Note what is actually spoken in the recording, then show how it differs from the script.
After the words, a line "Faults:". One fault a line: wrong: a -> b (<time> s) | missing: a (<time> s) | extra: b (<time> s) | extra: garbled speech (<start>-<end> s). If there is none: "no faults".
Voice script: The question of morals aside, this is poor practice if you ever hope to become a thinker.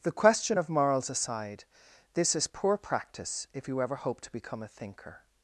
The question of morals aside, this is poor practice if you ever hope to become a thinker.
Faults:
no faults